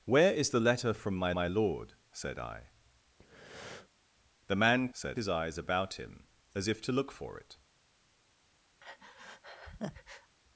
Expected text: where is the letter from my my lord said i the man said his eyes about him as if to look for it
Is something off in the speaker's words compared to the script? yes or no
no